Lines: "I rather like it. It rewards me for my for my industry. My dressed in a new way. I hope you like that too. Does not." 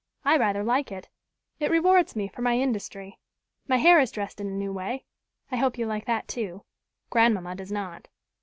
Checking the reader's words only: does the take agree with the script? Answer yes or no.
no